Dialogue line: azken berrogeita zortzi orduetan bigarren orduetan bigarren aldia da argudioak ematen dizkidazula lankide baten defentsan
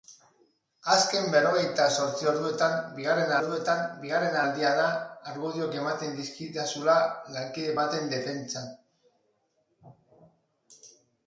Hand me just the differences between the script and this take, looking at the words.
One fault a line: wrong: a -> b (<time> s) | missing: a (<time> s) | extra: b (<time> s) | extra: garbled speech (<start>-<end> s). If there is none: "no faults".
no faults